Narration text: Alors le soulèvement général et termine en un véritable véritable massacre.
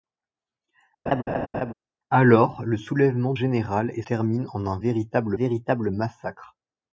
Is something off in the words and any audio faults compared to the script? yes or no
yes